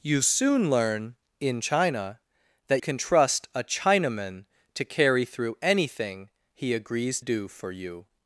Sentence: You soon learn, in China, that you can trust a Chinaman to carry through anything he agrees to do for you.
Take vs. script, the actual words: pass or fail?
fail